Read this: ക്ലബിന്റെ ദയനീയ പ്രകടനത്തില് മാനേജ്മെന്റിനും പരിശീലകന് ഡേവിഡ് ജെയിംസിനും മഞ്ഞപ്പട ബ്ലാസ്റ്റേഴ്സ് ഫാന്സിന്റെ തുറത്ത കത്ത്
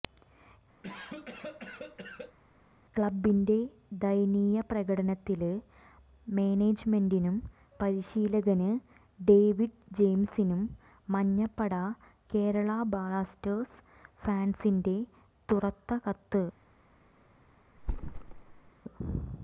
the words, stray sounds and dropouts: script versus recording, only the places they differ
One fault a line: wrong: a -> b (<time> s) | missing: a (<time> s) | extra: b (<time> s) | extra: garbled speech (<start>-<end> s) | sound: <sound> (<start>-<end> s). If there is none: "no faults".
sound: cough (0.8-2.4 s)
extra: കേരള (12.3 s)
sound: thud (17.8-18.7 s)